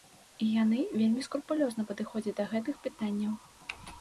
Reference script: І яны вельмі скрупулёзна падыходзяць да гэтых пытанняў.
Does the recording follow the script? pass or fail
pass